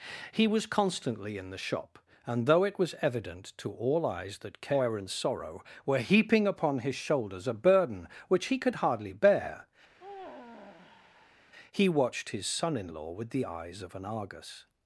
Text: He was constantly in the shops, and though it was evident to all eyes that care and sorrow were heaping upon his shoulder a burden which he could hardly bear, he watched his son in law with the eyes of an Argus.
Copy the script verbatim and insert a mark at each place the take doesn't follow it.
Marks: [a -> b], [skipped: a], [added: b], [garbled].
He was constantly in the [shops, -> shop] and though it was evident to all eyes that care and sorrow were heaping upon his [shoulder -> shoulders] a burden which he could hardly bear, he watched his son in law with the eyes of an Argus.